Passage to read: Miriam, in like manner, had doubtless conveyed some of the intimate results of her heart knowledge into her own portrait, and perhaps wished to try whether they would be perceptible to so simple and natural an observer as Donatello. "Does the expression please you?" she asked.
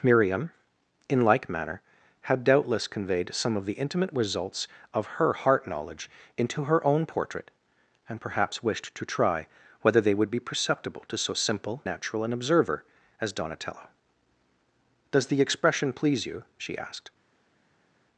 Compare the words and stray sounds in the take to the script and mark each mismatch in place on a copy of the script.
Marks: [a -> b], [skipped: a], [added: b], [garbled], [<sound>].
Miriam, in like manner, had doubtless conveyed some of the intimate results of her heart knowledge into her own portrait, and perhaps wished to try whether they would be perceptible to so simple [skipped: and] natural an observer as Donatello. "Does the expression please you?" she asked.